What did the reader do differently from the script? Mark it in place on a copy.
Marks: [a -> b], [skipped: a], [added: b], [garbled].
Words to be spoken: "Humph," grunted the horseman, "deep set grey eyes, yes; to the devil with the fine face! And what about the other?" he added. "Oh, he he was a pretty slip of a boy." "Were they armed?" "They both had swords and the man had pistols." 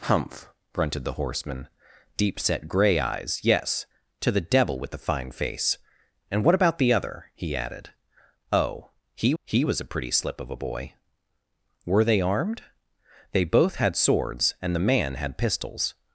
"Humph," grunted the horseman, "deep set grey eyes, yes; to the devil with the fine face! And what about the other?" he added. "Oh, he he was a pretty slip of a boy." "Were they armed?" "They both had swords and the man had pistols."